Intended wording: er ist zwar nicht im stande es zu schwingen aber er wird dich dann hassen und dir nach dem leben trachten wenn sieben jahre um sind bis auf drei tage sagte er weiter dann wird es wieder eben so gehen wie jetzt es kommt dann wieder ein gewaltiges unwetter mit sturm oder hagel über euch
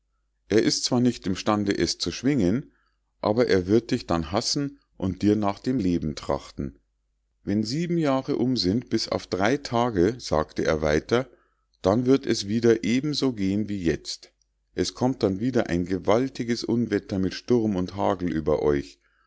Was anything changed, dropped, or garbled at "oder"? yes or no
yes